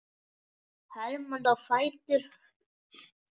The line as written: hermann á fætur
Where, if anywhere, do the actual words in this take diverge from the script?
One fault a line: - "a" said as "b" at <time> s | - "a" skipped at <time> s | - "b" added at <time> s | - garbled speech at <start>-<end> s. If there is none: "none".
none